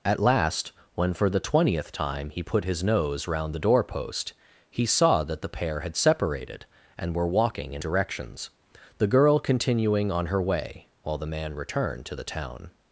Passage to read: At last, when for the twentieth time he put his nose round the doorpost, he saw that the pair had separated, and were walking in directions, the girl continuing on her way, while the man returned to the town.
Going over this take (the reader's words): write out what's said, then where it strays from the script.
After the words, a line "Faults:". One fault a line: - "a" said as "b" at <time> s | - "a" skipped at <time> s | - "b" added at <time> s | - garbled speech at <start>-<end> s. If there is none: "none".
At last, when for the twentieth time he put his nose round the doorpost, he saw that the pair had separated, and were walking in directions, the girl continuing on her way, while the man returned to the town.
Faults:
none